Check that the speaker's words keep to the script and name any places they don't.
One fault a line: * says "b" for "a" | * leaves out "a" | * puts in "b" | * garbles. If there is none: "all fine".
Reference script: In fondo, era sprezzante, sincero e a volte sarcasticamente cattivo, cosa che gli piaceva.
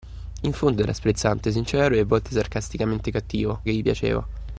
* leaves out "cosa"